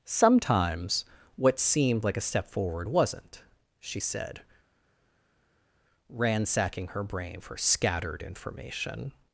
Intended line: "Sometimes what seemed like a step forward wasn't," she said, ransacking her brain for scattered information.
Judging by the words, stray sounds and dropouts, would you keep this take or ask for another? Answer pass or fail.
pass